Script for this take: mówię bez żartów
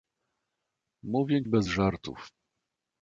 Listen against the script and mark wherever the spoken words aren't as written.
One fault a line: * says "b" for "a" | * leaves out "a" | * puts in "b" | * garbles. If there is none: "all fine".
all fine